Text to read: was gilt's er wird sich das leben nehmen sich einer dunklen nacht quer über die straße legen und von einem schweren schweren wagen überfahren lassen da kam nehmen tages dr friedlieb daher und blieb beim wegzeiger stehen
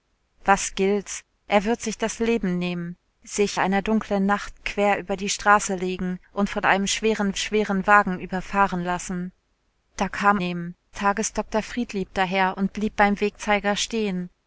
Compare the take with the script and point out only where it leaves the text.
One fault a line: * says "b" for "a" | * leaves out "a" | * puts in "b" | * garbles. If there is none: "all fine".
all fine